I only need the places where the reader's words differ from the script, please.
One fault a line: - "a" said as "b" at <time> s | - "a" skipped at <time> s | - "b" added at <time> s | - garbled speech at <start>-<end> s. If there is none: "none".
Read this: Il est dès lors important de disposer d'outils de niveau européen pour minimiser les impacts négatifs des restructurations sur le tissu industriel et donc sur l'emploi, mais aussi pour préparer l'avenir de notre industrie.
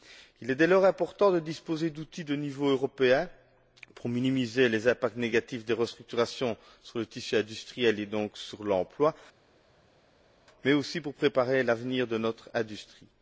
none